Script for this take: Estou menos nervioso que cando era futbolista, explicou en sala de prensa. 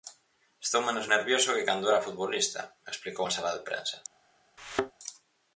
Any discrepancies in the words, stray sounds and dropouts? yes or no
yes